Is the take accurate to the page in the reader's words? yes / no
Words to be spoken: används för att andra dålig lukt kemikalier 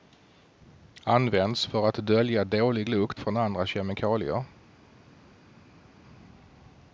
no